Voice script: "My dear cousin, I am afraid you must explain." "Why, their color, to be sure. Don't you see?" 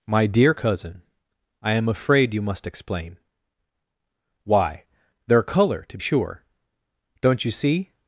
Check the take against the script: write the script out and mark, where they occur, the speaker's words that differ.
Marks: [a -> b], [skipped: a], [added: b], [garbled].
"My dear cousin, I am afraid you must explain." "Why, their color, to [skipped: be] sure. Don't you see?"